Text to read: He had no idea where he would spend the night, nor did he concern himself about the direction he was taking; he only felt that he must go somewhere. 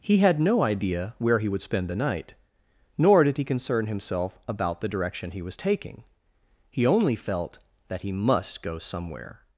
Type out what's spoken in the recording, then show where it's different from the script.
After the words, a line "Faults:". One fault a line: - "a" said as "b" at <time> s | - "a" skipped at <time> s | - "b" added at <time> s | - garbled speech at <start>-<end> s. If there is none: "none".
He had no idea where he would spend the night, nor did he concern himself about the direction he was taking; he only felt that he must go somewhere.
Faults:
none